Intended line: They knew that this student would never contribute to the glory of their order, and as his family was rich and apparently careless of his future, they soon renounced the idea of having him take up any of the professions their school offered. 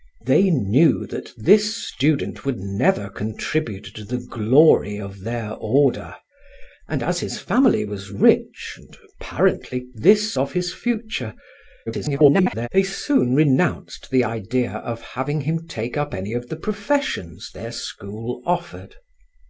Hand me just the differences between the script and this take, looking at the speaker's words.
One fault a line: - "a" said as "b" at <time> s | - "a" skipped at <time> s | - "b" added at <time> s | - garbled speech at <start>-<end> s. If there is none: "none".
- "careless" said as "this" at 9.9 s
- garbled speech at 11.9-12.7 s